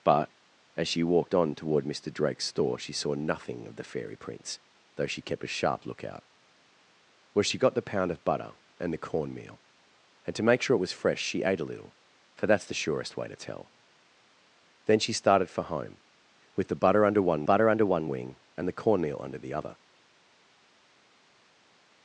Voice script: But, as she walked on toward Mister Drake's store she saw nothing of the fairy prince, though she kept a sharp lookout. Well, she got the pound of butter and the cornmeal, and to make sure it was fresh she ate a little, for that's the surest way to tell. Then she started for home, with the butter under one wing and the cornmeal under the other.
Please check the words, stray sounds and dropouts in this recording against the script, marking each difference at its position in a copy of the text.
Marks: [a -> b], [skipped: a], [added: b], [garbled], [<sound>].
But, as she walked on toward Mister Drake's store she saw nothing of the fairy prince, though she kept a sharp lookout. Well, she got the pound of butter and the cornmeal, and to make sure it was fresh she ate a little, for that's the surest way to tell. Then she started for home, with the butter under one [added: butter under one] wing and the cornmeal under the other.